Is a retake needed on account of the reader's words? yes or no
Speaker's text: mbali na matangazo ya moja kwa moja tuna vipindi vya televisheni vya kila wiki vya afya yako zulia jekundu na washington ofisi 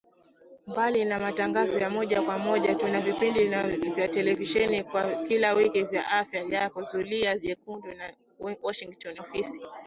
no